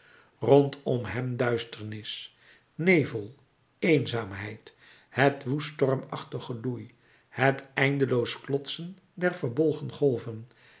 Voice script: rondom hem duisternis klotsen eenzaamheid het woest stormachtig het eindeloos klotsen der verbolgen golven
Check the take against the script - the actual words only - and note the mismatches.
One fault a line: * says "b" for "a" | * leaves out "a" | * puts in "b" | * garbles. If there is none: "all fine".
* says "nevel" for "klotsen"
* puts in "geloei"